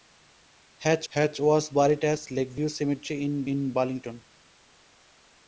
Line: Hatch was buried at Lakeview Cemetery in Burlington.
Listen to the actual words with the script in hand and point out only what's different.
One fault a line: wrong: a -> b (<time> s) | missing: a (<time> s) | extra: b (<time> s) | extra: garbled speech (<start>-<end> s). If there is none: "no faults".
extra: hatch (1.1 s)
extra: in (3.5 s)